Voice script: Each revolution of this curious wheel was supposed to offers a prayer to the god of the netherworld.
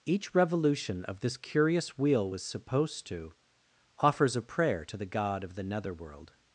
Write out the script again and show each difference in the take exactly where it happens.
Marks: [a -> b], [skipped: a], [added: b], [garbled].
Each revolution of this curious wheel was supposed to offers a prayer to the god of the netherworld.